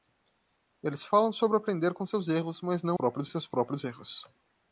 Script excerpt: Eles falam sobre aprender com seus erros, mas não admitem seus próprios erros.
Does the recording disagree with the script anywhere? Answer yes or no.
yes